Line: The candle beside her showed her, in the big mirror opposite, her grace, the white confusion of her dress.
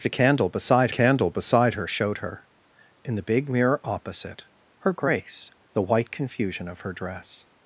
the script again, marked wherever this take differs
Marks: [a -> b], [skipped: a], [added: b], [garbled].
The candle beside [added: candle beside] her showed her, in the big mirror opposite, her grace, the white confusion of her dress.